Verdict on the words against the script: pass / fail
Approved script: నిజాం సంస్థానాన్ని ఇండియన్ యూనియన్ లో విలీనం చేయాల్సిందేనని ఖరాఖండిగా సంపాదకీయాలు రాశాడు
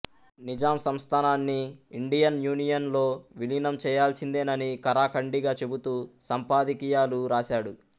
fail